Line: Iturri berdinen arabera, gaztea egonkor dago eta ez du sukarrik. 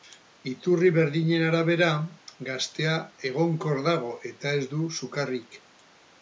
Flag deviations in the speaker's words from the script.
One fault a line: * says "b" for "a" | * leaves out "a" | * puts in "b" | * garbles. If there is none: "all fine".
all fine